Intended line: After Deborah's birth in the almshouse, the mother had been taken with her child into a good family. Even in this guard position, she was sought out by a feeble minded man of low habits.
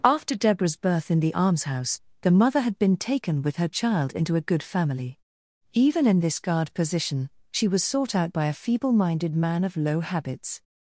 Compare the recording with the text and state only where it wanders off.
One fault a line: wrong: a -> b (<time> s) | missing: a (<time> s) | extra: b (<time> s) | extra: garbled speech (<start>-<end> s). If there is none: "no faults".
no faults